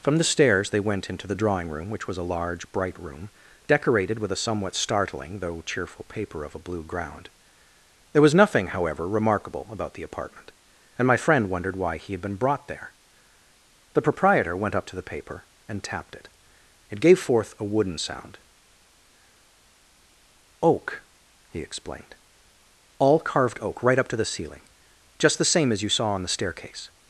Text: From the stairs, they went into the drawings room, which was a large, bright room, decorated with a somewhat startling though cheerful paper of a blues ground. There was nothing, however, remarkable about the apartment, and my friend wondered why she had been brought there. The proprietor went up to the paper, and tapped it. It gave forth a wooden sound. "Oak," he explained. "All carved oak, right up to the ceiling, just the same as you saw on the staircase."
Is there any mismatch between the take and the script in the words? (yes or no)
yes